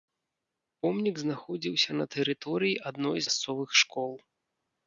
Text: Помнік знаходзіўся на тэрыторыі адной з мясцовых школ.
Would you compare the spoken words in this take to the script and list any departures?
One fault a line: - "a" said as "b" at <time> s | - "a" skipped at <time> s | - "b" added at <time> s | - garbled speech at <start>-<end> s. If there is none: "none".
- "з" skipped at 3.2 s